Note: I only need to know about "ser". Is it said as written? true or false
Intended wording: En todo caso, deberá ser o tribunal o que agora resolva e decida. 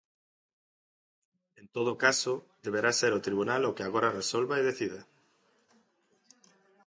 true